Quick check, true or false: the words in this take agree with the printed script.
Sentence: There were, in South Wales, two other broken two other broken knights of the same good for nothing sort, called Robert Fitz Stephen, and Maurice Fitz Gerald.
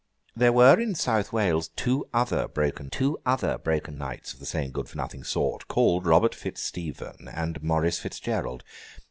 true